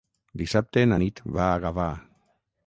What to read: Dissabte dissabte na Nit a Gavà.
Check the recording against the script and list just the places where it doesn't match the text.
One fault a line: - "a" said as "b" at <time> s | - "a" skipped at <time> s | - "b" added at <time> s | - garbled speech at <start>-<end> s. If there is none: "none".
- "dissabte" skipped at 0.8 s
- "va" added at 1.4 s